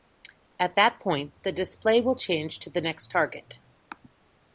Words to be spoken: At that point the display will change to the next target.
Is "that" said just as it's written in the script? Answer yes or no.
yes